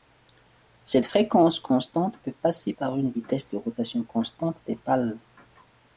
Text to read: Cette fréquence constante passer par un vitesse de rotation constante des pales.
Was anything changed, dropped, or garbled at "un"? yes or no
yes